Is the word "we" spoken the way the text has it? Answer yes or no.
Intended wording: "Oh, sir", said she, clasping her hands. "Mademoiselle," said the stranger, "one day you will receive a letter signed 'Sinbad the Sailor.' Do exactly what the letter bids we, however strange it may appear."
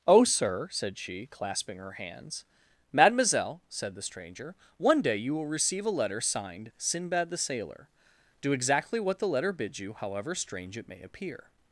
no